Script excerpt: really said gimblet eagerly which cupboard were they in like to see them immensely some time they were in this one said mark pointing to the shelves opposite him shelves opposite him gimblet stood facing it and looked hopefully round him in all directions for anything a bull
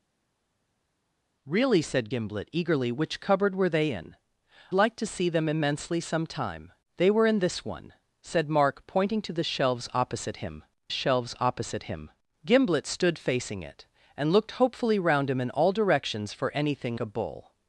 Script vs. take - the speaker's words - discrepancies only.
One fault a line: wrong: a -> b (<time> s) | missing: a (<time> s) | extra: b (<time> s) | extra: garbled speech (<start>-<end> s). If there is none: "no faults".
no faults